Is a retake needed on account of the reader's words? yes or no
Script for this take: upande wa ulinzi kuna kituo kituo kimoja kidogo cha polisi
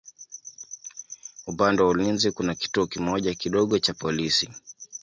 yes